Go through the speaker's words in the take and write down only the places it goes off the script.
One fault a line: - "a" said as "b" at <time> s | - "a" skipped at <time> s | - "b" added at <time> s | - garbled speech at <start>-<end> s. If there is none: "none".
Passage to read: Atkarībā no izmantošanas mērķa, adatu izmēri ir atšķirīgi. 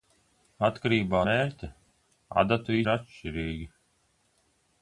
- "no izmantošanas" skipped at 1.2 s
- "izmēri" skipped at 2.8 s